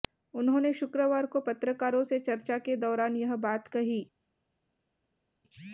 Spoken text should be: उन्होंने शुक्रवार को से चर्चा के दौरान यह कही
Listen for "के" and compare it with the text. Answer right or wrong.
right